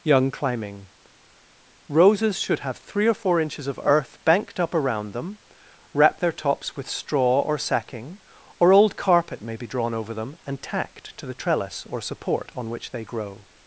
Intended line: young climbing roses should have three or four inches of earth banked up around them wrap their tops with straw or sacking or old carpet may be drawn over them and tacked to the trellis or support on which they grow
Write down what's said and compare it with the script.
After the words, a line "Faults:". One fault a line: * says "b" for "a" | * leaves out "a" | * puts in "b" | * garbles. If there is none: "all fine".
young climbing roses should have three or four inches of earth banked up around them wrap their tops with straw or sacking or old carpet may be drawn over them and tacked to the trellis or support on which they grow
Faults:
all fine